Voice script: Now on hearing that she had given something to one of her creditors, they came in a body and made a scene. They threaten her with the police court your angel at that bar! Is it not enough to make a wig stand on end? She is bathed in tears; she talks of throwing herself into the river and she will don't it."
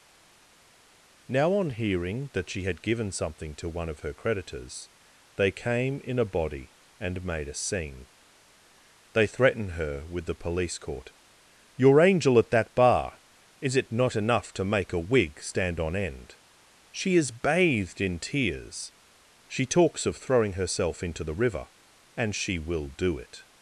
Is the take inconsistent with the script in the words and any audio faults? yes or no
yes